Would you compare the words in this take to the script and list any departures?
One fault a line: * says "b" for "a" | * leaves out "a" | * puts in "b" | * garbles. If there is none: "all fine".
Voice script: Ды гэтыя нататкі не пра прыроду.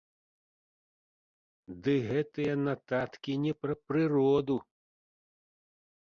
all fine